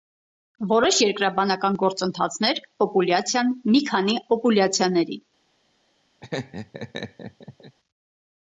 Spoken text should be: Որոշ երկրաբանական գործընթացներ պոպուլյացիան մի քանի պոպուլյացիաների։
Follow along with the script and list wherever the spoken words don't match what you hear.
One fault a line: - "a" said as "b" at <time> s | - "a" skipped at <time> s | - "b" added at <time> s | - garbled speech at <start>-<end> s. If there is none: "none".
none